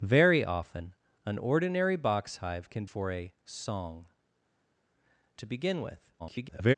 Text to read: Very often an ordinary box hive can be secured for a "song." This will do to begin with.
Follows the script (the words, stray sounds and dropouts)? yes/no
no